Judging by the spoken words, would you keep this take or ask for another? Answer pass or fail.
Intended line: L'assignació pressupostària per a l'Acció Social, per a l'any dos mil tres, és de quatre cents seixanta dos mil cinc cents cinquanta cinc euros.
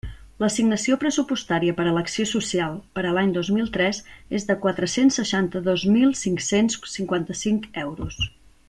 pass